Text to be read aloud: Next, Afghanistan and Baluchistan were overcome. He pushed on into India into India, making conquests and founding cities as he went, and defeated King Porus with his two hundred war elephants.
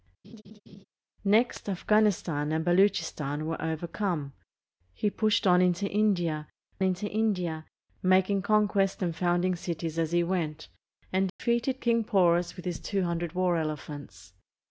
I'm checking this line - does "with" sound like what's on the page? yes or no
yes